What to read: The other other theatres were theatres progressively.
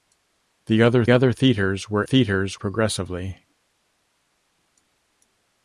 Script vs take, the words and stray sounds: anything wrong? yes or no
no